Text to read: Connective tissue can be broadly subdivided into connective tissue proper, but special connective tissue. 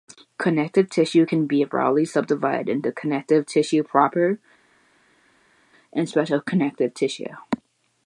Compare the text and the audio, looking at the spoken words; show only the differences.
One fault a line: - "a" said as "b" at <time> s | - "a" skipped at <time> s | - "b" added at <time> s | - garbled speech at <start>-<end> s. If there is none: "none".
- "but" said as "and" at 5.9 s